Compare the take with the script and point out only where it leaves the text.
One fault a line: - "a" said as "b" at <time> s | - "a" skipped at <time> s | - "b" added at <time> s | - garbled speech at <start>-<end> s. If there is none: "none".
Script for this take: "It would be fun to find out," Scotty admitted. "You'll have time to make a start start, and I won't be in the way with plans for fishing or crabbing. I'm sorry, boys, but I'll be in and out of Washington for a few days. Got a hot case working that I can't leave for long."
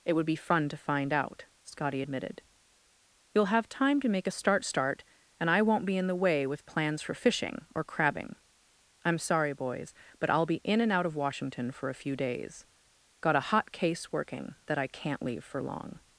none